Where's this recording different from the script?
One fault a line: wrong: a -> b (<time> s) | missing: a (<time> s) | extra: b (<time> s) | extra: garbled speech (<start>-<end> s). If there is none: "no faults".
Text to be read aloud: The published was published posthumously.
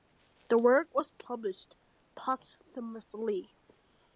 wrong: published -> work (0.6 s)